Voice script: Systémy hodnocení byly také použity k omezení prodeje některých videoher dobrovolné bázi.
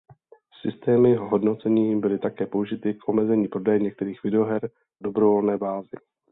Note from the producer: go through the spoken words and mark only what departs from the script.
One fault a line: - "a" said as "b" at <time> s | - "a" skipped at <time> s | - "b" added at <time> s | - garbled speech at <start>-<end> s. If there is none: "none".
none